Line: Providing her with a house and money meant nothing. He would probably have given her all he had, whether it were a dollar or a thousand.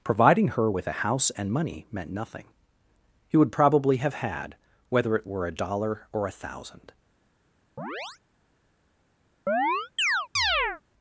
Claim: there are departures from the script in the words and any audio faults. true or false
true